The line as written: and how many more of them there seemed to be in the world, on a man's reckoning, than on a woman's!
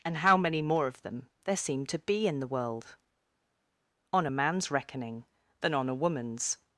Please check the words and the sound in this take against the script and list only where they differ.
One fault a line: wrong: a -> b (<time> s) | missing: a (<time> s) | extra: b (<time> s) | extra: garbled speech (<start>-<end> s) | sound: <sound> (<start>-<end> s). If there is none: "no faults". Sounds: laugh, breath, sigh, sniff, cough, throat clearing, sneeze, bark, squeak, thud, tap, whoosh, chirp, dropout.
no faults